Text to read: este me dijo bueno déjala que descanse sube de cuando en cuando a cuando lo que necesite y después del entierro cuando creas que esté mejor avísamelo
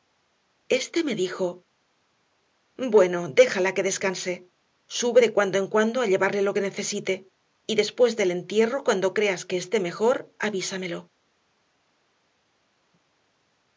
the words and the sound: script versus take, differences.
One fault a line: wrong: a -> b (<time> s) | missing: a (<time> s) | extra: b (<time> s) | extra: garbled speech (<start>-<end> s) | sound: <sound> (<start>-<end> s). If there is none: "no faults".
wrong: cuando -> llevarle (6.1 s)